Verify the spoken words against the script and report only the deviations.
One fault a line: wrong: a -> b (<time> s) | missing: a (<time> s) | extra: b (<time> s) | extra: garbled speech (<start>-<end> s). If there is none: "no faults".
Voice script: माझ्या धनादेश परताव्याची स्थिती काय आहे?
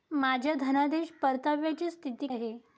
missing: काय (2.3 s)